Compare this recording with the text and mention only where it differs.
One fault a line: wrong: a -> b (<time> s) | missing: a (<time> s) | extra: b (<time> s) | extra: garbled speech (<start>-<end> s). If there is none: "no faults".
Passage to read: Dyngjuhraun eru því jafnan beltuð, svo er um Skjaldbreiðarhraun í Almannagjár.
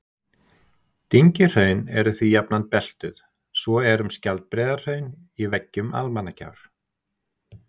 extra: veggjum (5.5 s)